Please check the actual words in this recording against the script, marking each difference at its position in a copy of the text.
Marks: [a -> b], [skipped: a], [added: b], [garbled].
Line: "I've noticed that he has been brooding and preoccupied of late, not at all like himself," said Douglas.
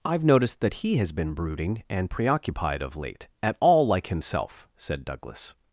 "I've noticed that he has been brooding and preoccupied of late, [skipped: not] at all like himself," said Douglas.